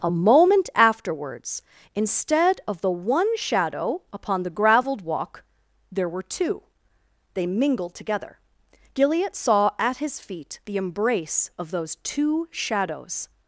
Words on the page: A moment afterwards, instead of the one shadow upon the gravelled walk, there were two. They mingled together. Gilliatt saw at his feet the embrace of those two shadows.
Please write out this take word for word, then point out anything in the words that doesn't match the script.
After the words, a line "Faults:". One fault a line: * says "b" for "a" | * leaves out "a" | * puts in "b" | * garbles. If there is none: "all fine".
A moment afterwards, instead of the one shadow upon the gravelled walk, there were two. They mingled together. Gilliatt saw at his feet the embrace of those two shadows.
Faults:
all fine